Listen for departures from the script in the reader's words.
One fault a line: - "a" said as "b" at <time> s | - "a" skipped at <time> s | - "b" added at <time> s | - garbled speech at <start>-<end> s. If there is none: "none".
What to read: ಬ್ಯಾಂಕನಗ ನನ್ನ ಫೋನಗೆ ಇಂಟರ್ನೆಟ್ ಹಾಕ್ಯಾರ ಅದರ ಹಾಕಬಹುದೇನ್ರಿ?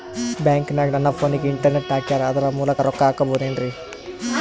- "ಮೂಲಕ ರೊಕ್ಕ" added at 2.5 s